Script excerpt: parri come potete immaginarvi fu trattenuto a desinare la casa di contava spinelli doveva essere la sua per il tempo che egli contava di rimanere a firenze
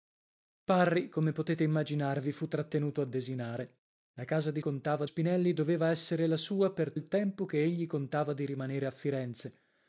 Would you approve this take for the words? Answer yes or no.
yes